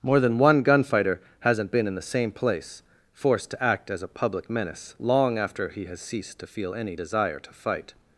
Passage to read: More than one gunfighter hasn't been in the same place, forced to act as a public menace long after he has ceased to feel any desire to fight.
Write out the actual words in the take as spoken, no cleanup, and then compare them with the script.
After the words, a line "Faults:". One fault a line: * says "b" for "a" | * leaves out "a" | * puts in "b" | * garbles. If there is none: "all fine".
More than one gunfighter hasn't been in the same place, forced to act as a public menace long after he has ceased to feel any desire to fight.
Faults:
all fine